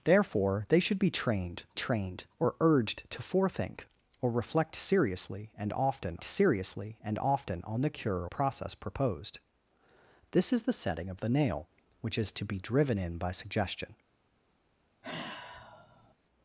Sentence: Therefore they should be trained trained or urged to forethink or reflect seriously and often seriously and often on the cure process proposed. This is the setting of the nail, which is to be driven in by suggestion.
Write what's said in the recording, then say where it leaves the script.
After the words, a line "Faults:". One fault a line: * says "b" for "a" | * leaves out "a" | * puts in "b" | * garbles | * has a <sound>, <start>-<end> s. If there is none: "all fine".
Therefore they should be trained trained or urged to forethink or reflect seriously and often seriously and often on the cure process proposed. This is the setting of the nail, which is to be driven in by suggestion.
Faults:
* has a sigh, 15.0-16.1 s